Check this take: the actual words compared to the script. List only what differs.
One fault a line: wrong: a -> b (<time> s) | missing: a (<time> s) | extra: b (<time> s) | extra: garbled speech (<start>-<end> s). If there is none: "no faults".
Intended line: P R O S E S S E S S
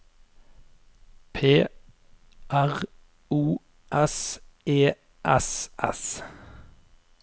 missing: E S S (6.2 s)